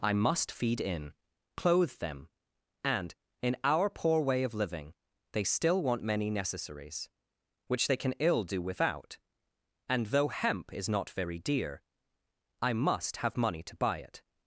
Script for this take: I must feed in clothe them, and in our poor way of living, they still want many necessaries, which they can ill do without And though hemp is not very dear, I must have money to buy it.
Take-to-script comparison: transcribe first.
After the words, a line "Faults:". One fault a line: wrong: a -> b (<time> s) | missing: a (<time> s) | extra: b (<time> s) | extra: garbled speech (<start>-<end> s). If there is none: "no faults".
I must feed in clothe them, and in our poor way of living, they still want many necessaries, which they can ill do without And though hemp is not very dear, I must have money to buy it.
Faults:
no faults